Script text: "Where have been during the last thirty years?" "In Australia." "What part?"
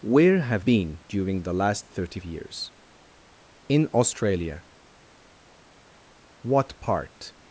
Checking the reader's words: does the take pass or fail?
pass